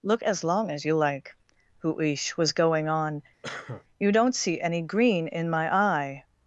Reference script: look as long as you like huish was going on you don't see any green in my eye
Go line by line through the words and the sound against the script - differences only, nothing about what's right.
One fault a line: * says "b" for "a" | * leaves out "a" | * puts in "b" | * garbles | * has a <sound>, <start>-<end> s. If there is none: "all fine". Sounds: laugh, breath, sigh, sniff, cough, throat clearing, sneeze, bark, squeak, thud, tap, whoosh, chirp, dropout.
* has a cough, 3.4-3.8 s